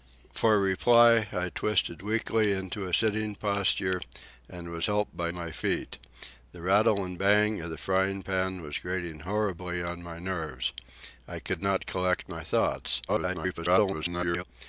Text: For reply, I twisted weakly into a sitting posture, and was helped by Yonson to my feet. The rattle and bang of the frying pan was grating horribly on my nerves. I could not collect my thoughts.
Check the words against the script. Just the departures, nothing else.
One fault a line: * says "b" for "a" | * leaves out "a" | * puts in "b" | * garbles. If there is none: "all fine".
* leaves out "Yonson to"
* garbles